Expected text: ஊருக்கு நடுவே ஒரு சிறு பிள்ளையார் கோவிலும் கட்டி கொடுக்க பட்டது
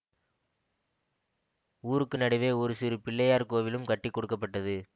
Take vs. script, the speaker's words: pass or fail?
pass